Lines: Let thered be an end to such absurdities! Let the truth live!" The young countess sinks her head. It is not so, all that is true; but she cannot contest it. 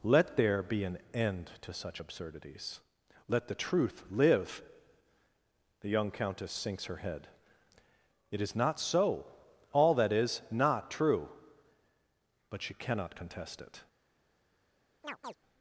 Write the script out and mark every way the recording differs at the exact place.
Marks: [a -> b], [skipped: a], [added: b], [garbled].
Let [thered -> there] be an end to such absurdities! Let the truth live!" The young countess sinks her head. It is not so, all that is [added: not] true; but she cannot contest it.